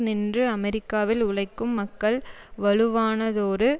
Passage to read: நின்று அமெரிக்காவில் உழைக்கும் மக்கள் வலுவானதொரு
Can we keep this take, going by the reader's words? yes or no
yes